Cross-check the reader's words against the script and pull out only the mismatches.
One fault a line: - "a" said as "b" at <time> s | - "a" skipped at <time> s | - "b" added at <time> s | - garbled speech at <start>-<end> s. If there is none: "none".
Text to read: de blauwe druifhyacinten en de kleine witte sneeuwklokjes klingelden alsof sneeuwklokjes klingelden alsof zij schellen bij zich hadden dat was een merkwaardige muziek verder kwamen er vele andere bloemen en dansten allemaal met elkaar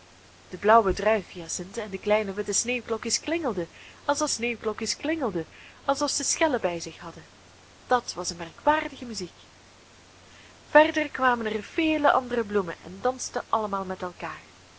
none